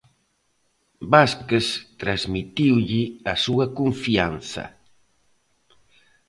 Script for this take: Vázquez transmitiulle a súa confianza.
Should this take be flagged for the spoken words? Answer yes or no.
no